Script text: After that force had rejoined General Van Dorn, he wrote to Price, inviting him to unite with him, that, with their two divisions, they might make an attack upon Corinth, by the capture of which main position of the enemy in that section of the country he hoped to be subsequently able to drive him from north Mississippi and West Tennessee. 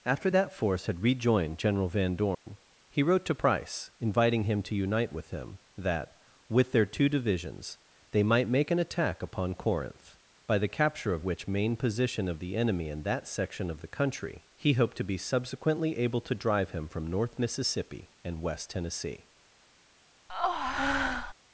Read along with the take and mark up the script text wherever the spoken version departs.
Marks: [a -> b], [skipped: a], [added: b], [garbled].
After that force had rejoined General Van Dorn, he wrote to Price, inviting him to unite with him, that, with their two divisions, they might make an attack upon Corinth, by the capture of which main position of the enemy in that section of the country he hoped to be subsequently able to drive him from north Mississippi and West Tennessee.